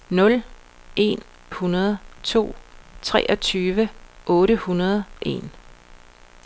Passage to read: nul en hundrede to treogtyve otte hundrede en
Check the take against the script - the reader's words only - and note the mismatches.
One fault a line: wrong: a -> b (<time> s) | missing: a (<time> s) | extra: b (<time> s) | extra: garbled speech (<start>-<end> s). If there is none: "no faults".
no faults